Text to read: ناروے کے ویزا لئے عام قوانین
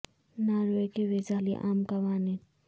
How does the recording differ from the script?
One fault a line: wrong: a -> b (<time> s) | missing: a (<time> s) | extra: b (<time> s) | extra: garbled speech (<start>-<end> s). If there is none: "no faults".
no faults